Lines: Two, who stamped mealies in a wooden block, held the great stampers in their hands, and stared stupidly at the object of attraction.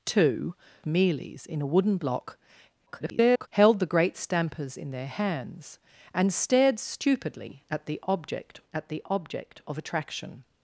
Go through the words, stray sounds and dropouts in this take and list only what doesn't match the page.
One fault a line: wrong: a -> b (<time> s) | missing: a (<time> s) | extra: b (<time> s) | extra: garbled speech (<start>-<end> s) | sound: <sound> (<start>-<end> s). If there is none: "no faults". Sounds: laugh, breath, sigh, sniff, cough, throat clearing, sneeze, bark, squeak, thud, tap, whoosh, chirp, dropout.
missing: who stamped (0.6 s)
extra: garbled speech (2.9-3.5 s)
extra: at the object (8.7 s)